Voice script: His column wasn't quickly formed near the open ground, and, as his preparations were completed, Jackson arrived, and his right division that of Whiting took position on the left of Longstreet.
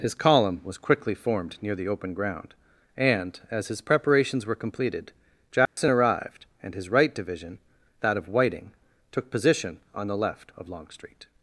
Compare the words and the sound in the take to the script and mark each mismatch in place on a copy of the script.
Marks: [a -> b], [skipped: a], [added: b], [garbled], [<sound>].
His column [wasn't -> was] quickly formed near the open ground, and, as his preparations were completed, Jackson [dropout] arrived, and his right division that of Whiting took position on the left of Longstreet.